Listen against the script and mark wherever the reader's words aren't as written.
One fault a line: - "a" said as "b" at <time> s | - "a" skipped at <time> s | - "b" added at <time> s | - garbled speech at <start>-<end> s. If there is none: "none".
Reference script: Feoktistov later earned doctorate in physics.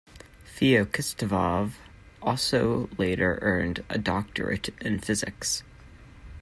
- "also" added at 2.2 s
- "a" added at 3.9 s